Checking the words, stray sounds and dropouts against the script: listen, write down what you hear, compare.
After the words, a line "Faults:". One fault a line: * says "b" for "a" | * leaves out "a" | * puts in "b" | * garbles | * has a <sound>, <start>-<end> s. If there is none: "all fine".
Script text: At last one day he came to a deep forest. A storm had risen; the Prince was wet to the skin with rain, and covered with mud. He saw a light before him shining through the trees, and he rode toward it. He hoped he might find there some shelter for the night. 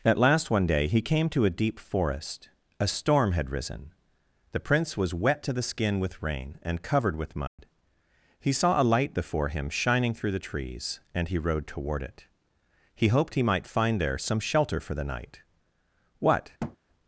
At last one day he came to a deep forest. A storm had risen; the Prince was wet to the skin with rain, and covered with mud. He saw a light before him shining through the trees, and he rode toward it. He hoped he might find there some shelter for the night. What
Faults:
* has a dropout, 7.5-7.6 s
* puts in "What"
* has a thud, 16.6-16.8 s